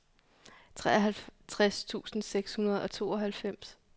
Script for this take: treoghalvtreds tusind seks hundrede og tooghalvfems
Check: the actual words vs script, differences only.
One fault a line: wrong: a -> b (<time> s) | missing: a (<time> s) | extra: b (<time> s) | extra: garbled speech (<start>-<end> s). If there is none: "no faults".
no faults